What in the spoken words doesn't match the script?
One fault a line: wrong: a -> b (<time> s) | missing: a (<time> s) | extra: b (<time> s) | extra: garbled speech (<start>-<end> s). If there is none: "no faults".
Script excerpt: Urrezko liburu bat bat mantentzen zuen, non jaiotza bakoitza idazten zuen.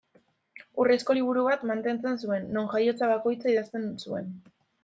missing: bat (1.7 s)